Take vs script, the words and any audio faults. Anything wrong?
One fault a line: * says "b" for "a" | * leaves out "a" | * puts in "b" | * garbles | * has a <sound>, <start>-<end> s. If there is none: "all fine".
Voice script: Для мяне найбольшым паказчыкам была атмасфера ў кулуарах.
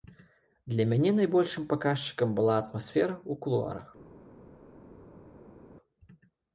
all fine